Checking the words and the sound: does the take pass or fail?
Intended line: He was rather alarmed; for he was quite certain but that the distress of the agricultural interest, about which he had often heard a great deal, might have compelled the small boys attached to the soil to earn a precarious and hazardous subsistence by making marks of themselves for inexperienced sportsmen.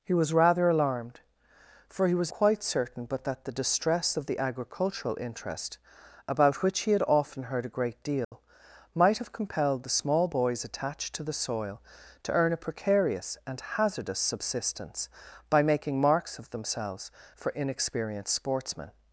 fail